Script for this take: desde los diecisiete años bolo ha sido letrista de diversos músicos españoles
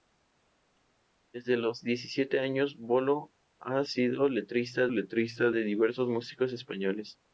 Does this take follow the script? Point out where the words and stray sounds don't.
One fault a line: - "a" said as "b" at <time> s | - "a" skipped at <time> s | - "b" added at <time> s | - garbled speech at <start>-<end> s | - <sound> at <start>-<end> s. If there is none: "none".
- "letrista" added at 4.9 s